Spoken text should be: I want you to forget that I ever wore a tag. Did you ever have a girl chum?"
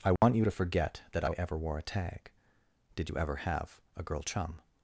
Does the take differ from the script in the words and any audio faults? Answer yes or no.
yes